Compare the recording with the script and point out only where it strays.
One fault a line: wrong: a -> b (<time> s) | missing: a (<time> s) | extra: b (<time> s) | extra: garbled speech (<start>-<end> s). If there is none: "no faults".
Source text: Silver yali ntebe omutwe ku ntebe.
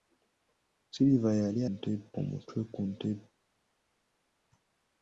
no faults